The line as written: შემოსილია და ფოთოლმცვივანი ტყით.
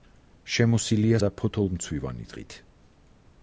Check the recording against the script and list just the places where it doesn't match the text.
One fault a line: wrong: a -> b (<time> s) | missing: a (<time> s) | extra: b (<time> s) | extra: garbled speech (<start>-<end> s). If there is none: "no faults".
no faults